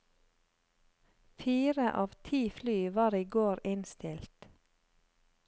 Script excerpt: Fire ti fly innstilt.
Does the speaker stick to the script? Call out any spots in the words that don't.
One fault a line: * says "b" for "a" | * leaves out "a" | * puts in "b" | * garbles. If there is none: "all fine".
* puts in "av"
* puts in "var i går"